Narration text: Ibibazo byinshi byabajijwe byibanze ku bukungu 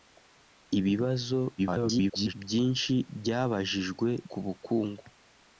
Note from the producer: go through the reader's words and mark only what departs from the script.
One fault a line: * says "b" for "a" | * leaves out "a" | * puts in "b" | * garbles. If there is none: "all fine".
* garbles
* leaves out "byibanze"